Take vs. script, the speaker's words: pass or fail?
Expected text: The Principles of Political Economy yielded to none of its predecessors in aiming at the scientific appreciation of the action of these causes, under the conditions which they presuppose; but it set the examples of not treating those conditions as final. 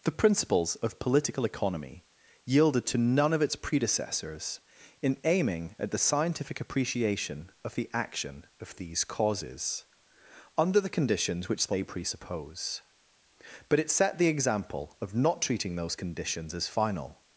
fail